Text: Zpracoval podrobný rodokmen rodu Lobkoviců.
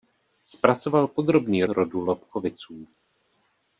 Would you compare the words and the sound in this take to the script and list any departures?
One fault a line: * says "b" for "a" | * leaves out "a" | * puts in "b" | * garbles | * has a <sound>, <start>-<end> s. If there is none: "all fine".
* leaves out "rodokmen"